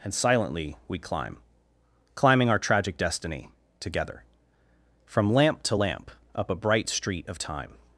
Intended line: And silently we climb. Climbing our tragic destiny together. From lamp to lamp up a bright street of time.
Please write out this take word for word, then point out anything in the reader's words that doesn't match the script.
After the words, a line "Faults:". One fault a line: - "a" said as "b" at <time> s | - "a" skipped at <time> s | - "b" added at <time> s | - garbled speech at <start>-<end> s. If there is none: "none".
And silently we climb. Climbing our tragic destiny together. From lamp to lamp up a bright street of time.
Faults:
none